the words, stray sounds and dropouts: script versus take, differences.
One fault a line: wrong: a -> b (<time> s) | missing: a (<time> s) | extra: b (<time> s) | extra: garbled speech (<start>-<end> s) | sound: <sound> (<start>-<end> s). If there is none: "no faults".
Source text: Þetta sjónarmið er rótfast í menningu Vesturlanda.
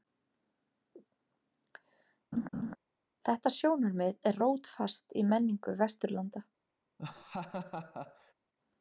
sound: laugh (2.3-2.8 s)
sound: laugh (7.0-8.3 s)